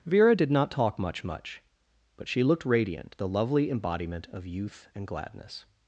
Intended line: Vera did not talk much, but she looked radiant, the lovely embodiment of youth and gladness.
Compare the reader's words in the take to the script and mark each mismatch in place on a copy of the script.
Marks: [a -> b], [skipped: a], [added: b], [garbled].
Vera did not talk much, [added: much] but she looked radiant, the lovely embodiment of youth and gladness.